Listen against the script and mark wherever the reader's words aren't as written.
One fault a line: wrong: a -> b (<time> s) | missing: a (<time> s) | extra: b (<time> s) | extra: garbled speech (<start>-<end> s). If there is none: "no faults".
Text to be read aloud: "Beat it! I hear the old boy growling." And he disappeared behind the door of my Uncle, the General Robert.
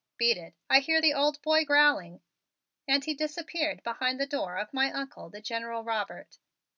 no faults